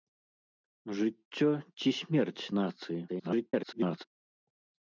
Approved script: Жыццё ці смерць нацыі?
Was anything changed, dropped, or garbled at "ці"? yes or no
no